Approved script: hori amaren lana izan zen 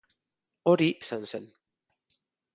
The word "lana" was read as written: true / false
false